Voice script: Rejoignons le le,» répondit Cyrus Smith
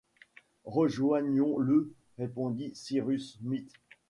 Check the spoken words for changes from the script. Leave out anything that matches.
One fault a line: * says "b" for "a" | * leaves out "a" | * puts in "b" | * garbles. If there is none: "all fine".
* leaves out "le"